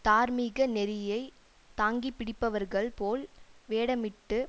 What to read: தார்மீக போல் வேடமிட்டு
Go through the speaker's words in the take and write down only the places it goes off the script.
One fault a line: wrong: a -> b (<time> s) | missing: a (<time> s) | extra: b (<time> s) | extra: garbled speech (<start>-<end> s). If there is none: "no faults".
extra: நெறியை தாங்கிப்பிடிப்பவர்கள் (0.7 s)